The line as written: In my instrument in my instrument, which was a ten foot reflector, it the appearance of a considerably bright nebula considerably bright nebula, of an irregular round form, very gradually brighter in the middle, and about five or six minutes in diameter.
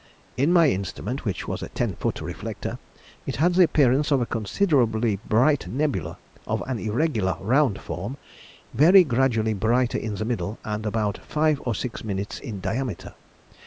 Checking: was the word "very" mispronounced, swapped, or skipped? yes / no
no